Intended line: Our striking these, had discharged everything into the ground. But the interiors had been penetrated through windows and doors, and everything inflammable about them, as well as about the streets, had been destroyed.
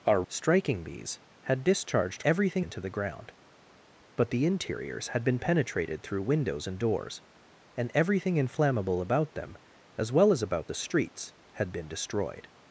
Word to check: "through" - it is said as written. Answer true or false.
true